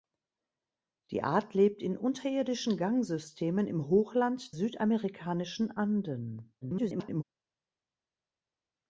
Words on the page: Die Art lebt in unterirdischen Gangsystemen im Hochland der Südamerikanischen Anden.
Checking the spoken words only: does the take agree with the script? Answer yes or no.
no